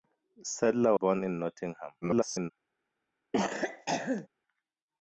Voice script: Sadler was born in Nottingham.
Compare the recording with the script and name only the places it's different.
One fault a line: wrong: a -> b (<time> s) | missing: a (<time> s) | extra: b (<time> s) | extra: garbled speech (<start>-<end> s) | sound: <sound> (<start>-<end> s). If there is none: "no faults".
missing: was (0.9 s)
extra: garbled speech (2.0-2.5 s)
sound: cough (3.3-4.3 s)